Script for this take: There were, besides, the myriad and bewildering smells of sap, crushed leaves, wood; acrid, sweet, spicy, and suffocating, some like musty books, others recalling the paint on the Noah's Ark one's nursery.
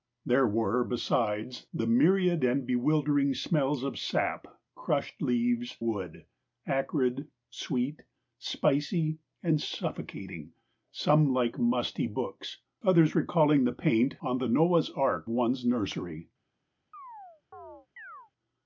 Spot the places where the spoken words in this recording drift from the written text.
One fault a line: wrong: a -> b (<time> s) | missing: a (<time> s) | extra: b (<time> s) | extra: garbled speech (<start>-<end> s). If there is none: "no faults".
no faults